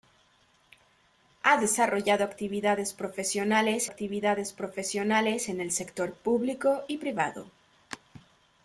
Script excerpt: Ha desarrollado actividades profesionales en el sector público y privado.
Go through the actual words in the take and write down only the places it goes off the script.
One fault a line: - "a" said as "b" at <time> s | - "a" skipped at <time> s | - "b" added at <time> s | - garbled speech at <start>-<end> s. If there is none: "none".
- "actividades profesionales" added at 3.8 s